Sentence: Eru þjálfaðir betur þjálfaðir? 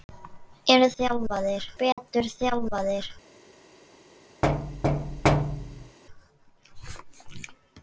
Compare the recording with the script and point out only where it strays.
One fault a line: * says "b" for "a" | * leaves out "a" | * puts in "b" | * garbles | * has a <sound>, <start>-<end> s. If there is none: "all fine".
* has a dropout, 1.9-2.0 s
* has a thud, 4.4-6.0 s